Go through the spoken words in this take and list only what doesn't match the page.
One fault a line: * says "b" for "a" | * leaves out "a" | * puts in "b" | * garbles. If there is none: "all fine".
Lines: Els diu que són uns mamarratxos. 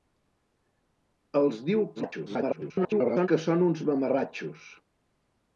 * garbles